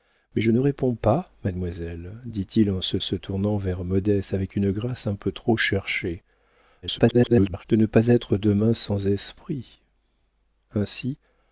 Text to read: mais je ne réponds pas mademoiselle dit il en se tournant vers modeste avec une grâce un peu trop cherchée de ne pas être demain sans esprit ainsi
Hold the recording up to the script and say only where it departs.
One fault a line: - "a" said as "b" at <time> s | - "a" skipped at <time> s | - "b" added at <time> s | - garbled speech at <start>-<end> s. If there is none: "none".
- "se" added at 3.0 s
- garbled speech at 6.8-7.6 s